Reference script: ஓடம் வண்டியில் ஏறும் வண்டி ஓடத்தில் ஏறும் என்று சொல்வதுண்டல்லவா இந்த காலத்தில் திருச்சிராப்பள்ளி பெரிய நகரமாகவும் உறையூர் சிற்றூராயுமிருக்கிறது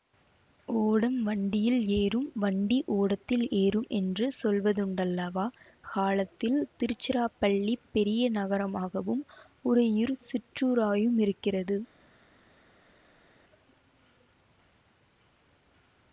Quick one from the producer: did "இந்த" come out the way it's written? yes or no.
no